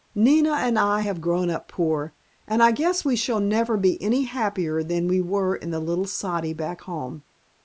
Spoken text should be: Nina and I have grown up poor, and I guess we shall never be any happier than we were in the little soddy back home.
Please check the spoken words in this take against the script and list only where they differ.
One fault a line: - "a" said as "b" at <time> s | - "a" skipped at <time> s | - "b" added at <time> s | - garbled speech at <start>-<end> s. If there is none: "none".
none